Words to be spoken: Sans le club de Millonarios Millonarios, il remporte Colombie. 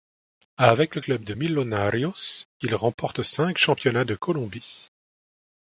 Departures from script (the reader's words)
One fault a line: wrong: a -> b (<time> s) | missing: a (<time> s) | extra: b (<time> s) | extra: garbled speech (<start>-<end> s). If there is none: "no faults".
wrong: Sans -> Avec (0.6 s)
missing: Millonarios (2.5 s)
extra: cinq championnats de (3.2 s)